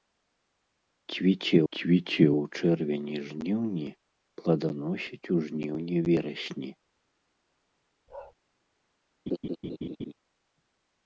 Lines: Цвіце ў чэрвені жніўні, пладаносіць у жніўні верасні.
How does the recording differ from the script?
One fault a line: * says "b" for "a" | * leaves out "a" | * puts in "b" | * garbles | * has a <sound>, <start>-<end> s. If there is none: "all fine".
* puts in "цвіце"
* has a bark, 8.1-8.3 s
* has a laugh, 9.3-10.1 s